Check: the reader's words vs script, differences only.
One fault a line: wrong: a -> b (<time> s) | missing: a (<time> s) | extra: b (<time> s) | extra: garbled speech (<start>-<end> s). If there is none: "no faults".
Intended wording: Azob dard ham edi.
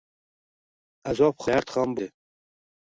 no faults